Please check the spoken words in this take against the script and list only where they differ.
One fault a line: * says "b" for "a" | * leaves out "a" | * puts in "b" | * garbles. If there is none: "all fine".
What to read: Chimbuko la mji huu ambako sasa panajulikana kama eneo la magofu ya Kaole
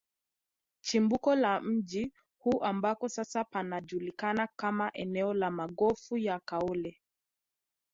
all fine